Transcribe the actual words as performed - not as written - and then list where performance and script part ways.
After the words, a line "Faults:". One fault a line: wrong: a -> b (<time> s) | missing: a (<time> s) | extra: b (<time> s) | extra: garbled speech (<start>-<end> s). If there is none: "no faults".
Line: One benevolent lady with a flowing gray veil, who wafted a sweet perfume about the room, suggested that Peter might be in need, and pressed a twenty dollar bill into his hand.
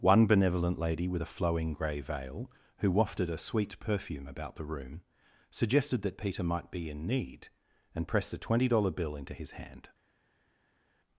One benevolent lady with a flowing gray veil, who wafted a sweet perfume about the room, suggested that Peter might be in need, and pressed a twenty dollar bill into his hand.
Faults:
no faults